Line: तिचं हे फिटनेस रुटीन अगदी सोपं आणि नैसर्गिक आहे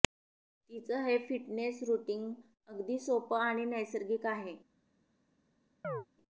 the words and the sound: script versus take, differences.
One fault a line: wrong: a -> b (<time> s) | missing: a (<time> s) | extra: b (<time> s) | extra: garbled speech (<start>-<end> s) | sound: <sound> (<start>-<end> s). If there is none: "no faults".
sound: chirp (5.8-6.1 s)